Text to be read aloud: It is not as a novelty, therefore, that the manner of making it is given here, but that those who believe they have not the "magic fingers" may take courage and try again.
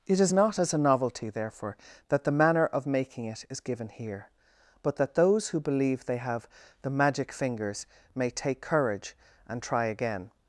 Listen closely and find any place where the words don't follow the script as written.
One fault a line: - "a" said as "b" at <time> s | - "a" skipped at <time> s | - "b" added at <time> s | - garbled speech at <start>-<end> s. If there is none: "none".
- "not" skipped at 6.5 s